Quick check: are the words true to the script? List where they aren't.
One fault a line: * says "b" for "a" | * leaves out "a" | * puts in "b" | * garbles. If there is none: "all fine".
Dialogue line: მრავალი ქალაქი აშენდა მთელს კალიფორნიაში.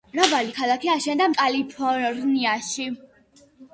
* leaves out "მთელს"